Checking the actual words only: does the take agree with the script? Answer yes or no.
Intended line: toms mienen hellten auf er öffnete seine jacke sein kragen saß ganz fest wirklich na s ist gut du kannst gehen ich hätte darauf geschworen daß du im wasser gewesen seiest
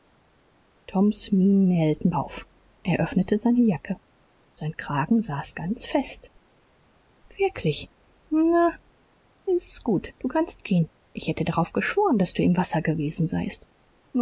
yes